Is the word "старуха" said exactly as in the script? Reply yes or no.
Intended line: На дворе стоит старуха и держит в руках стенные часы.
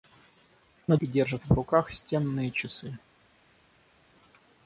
no